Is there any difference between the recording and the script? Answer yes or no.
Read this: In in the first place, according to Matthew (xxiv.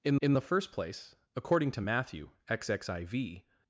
no